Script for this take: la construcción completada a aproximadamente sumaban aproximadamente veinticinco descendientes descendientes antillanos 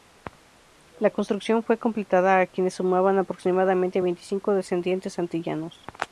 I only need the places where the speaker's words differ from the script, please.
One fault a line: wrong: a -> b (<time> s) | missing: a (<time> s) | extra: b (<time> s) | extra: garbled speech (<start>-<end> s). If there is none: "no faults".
extra: fue (1.6 s)
wrong: aproximadamente -> quienes (2.5 s)
missing: descendientes (5.2 s)